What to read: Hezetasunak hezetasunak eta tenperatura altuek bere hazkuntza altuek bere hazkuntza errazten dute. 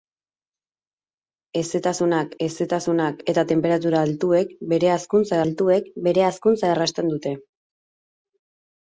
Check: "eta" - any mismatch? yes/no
no